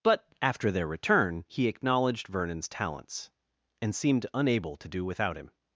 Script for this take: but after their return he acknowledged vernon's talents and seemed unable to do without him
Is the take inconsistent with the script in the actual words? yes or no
no